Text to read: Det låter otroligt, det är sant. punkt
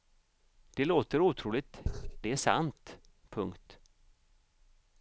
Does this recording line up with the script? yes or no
yes